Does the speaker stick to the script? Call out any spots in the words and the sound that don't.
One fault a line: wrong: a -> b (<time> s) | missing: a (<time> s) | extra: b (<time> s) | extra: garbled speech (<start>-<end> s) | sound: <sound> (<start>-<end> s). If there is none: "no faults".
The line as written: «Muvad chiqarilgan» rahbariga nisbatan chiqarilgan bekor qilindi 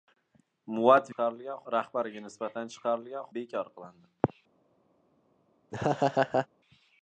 sound: laugh (5.7-6.5 s)